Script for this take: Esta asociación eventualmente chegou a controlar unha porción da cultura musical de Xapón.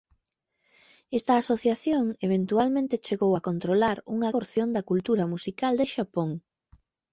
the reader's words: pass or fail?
pass